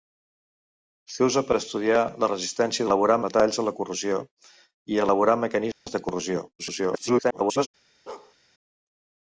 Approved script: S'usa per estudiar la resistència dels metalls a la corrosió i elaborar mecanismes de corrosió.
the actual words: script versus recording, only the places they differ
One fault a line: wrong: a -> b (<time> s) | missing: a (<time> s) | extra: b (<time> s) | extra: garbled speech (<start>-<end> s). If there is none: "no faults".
wrong: dels -> elaborar (2.9 s)
extra: garbled speech (6.6-7.7 s)